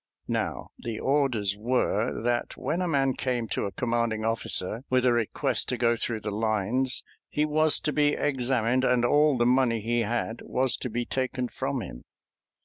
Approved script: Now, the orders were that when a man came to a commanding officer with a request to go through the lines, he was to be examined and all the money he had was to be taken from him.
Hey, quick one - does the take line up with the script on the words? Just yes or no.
yes